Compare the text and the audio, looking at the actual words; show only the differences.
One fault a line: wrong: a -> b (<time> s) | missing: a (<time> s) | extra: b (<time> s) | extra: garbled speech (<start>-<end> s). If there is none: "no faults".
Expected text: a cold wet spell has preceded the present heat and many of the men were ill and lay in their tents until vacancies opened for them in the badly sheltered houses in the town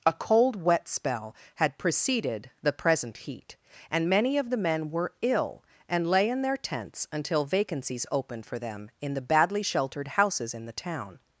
wrong: has -> had (1.6 s)